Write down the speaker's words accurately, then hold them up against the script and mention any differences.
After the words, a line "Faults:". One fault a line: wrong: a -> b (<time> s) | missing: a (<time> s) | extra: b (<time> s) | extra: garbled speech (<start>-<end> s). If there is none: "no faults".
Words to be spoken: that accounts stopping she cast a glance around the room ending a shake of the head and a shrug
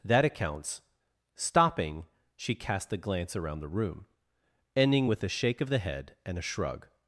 that accounts stopping she cast a glance around the room ending with a shake of the head and a shrug
Faults:
extra: with (5.1 s)